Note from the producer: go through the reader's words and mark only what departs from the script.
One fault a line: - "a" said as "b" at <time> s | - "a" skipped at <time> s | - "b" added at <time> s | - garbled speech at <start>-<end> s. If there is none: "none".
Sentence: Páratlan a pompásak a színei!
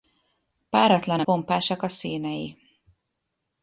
none